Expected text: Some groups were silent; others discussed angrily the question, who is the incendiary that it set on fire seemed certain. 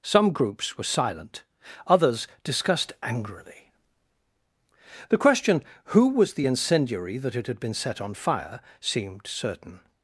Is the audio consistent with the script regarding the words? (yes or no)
no